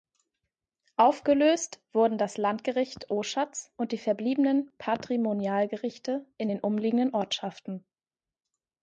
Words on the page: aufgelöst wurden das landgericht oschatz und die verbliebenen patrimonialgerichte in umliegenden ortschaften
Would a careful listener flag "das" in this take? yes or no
no